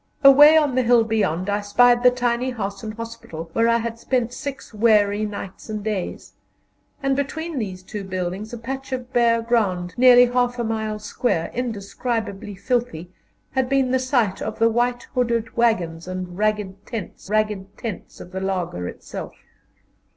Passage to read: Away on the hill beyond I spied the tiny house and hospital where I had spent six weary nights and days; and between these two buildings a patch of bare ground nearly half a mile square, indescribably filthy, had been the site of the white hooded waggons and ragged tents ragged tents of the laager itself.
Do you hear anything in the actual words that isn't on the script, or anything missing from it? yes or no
no